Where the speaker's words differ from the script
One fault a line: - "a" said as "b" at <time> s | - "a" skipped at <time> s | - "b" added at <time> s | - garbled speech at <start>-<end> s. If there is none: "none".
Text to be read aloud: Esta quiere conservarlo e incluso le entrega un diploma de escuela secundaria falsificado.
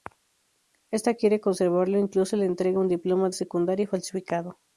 - "escuela" skipped at 3.4 s